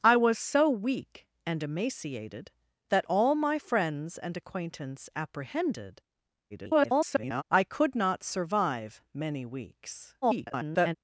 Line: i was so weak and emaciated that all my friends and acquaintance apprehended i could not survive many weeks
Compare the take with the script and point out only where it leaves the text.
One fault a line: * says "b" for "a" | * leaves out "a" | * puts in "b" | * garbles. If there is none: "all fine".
* garbles
* garbles